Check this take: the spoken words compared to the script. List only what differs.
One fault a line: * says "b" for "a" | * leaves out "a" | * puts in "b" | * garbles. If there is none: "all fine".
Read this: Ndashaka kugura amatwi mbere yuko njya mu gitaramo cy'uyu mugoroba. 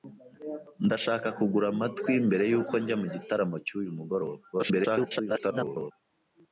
* garbles